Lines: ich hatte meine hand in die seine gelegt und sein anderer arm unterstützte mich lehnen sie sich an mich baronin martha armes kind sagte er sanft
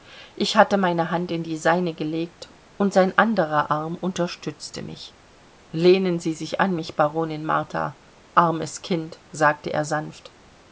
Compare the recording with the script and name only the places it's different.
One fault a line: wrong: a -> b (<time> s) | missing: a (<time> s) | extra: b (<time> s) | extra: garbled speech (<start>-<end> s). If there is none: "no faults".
no faults